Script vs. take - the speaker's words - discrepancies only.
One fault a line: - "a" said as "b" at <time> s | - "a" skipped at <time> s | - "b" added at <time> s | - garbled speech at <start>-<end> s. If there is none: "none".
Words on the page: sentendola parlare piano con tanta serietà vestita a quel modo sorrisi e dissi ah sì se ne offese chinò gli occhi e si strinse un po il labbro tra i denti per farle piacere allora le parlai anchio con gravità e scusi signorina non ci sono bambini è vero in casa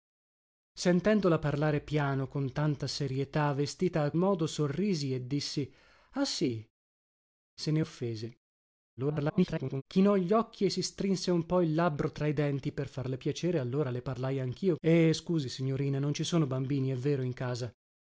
- "quel" skipped at 4.1 s
- garbled speech at 9.0-9.8 s
- "con gravità" skipped at 14.8 s